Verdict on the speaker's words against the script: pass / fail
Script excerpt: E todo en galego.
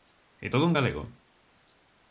pass